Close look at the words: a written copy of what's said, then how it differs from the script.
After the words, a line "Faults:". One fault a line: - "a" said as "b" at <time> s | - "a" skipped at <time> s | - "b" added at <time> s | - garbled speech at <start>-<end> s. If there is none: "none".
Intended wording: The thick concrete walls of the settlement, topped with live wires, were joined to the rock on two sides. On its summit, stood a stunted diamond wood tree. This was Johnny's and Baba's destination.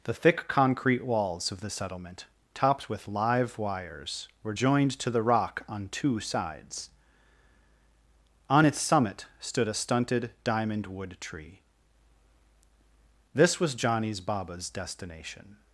The thick concrete walls of the settlement, topped with live wires, were joined to the rock on two sides. On its summit, stood a stunted diamond wood tree. This was Johnny's Baba's destination.
Faults:
- "and" skipped at 14.2 s